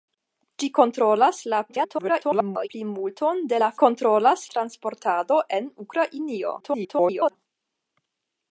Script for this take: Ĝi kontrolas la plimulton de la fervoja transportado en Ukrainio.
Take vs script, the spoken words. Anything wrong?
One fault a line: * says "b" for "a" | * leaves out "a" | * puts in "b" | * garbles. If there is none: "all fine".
* garbles
* says "kontrolas" for "fervoja"
* garbles